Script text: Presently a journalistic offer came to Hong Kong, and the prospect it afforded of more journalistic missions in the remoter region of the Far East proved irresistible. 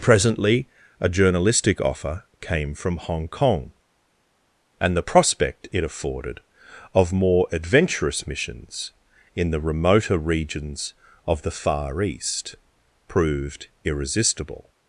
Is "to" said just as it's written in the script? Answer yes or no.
no